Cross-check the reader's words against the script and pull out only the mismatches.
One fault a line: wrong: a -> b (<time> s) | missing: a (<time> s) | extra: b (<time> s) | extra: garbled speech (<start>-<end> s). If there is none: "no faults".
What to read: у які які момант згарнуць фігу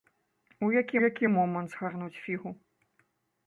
no faults